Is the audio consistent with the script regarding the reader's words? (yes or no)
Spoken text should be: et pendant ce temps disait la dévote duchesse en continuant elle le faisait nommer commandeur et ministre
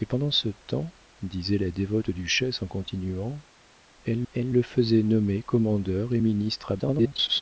no